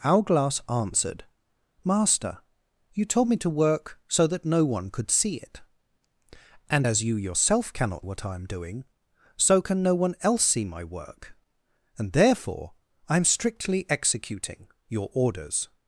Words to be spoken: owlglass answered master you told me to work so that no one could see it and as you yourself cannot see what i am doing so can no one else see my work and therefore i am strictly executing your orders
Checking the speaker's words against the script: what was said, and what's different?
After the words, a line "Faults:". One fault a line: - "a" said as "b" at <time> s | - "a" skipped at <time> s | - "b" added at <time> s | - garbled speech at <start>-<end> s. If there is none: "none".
owlglass answered master you told me to work so that no one could see it and as you yourself cannot what i am doing so can no one else see my work and therefore i am strictly executing your orders
Faults:
- "see" skipped at 8.1 s